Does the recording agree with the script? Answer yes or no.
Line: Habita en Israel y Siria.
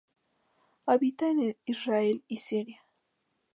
yes